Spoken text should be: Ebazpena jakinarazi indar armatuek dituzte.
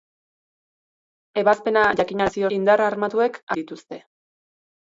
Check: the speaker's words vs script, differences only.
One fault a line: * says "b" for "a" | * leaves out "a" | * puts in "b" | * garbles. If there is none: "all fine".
all fine